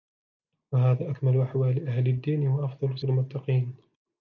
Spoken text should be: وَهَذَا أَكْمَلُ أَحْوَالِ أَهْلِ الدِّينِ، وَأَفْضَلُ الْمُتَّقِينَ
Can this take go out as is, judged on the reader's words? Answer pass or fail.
pass